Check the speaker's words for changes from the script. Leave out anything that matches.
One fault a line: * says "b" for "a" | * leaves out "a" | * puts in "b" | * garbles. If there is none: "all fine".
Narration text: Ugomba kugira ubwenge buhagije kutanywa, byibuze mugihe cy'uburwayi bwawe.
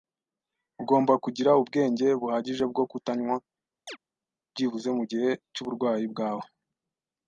* puts in "bwo"